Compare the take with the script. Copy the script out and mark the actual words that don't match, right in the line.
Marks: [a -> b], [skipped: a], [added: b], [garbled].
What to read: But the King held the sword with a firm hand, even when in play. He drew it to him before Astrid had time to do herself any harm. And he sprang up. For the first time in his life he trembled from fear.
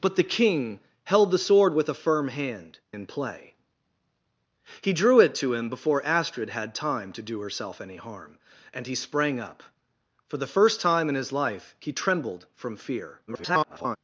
But the King held the sword with a firm hand, [skipped: even when] in play. He drew it to him before Astrid had time to do herself any harm. And he sprang up. For the first time in his life he trembled from fear. [garbled]